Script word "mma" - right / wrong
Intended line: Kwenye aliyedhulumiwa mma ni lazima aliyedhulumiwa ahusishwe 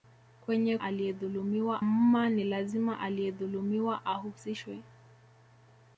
right